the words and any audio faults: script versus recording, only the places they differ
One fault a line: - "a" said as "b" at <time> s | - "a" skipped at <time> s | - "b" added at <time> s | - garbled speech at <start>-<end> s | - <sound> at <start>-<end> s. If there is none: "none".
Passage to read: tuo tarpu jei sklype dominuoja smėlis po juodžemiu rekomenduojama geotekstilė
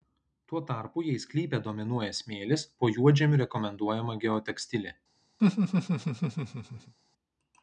- laugh at 5.4-6.9 s